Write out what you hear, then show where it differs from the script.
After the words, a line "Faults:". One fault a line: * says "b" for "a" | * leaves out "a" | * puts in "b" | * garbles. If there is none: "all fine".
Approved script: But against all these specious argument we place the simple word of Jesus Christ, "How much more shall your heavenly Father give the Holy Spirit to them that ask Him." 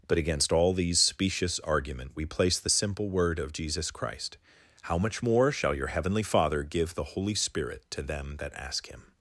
But against all these specious argument we place the simple word of Jesus Christ, "How much more shall your heavenly Father give the Holy Spirit to them that ask Him."
Faults:
all fine